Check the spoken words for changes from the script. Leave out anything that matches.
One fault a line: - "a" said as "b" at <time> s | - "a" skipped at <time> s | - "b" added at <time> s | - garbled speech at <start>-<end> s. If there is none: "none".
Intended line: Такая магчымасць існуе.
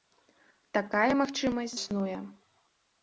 none